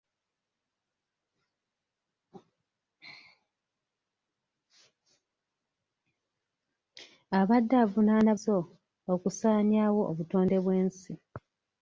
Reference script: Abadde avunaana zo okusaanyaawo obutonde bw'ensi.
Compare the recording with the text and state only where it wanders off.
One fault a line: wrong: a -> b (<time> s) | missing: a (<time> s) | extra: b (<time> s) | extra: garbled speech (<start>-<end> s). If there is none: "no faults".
no faults